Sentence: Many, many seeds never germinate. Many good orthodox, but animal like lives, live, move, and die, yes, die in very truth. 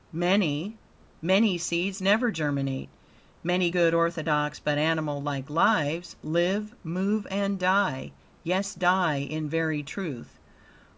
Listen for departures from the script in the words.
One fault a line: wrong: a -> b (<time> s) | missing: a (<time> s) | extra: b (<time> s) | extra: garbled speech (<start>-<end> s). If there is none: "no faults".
no faults